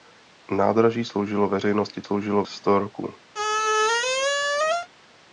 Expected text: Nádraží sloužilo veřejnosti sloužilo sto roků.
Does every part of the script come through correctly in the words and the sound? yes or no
no